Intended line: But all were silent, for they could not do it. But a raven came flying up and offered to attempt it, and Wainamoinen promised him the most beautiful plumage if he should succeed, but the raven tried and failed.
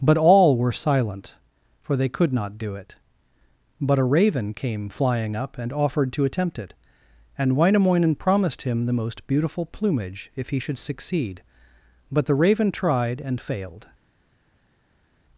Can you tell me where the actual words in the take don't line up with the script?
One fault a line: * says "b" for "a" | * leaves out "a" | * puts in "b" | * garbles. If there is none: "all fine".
all fine